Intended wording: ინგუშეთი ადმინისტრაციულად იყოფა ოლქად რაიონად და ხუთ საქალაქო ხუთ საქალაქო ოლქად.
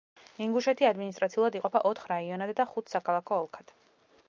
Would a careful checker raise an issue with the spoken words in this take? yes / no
yes